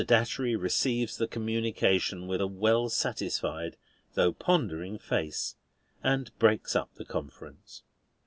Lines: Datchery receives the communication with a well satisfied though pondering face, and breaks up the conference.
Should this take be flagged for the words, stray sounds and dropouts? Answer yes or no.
no